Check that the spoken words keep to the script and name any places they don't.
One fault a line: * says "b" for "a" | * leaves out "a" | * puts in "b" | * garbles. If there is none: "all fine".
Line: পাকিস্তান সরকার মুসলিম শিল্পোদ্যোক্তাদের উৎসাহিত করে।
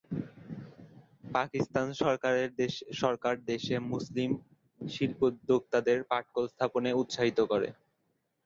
* puts in "দেশে"
* puts in "পাটকল স্থাপনে"